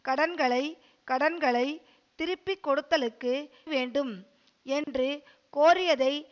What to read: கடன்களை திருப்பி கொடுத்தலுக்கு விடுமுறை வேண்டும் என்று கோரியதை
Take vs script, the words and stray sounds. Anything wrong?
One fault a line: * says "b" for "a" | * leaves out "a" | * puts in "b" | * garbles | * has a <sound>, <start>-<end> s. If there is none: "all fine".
* puts in "கடன்களை"
* leaves out "விடுமுறை"
* has a dropout, 4.8-4.9 s